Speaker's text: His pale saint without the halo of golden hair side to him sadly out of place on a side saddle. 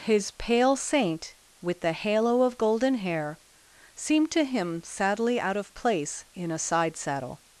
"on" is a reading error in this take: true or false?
true